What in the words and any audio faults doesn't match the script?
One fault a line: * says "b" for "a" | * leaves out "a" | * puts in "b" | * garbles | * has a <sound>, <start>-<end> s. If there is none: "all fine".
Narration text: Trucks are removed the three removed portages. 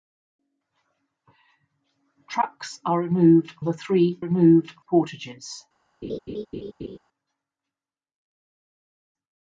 * has a laugh, 6.0-7.0 s